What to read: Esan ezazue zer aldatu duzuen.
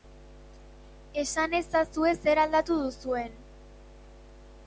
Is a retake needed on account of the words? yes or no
no